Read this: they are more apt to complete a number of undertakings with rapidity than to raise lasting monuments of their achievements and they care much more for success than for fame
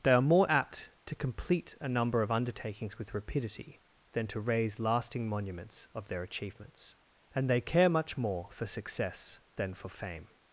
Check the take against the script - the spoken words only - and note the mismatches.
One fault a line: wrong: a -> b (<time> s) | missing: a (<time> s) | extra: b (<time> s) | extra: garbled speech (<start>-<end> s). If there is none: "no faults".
no faults